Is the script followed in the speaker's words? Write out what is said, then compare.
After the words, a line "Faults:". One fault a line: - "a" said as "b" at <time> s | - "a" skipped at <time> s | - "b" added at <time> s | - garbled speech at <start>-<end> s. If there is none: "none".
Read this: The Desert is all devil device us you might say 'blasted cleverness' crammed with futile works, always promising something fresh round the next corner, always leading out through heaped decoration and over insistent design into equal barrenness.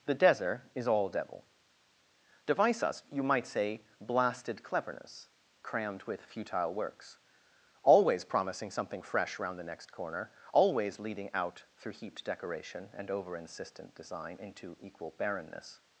The Desert is all devil device us you might say 'blasted cleverness' crammed with futile works, always promising something fresh round the next corner, always leading out through heaped decoration and over insistent design into equal barrenness.
Faults:
none